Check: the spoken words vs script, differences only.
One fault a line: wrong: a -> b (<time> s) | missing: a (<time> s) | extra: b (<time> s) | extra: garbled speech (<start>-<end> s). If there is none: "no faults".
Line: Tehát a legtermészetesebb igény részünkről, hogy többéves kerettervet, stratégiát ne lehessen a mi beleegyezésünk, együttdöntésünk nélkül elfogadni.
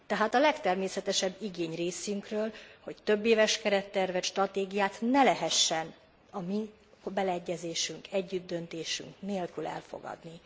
no faults